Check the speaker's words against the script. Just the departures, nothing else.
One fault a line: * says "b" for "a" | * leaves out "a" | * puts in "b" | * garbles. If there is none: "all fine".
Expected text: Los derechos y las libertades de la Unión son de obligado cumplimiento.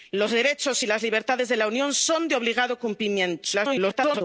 * garbles